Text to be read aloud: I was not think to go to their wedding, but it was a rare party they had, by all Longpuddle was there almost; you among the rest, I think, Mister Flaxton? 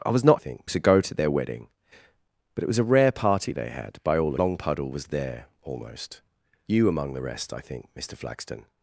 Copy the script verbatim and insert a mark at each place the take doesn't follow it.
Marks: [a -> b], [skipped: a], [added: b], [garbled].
I was not think to go to their wedding, but it was a rare party they had, by all Longpuddle was there almost; you among the rest, I think, Mister Flaxton?